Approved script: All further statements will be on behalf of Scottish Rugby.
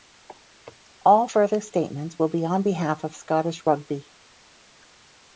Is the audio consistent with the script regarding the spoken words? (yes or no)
yes